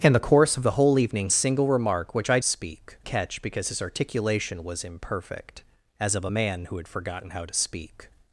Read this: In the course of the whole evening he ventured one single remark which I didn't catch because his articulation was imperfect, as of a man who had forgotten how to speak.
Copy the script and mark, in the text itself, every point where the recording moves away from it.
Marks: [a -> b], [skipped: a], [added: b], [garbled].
In the course of the whole evening [skipped: he ventured one] single remark which I [didn't -> speak] catch because his articulation was imperfect, as of a man who had forgotten how to speak.